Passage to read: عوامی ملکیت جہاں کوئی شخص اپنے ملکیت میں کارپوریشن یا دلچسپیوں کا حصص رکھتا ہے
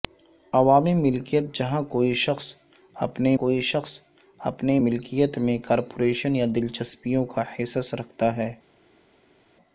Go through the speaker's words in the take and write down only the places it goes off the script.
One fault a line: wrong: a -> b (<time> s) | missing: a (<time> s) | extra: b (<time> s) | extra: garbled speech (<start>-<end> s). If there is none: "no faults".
extra: کوئی شخص اپنے (3.4 s)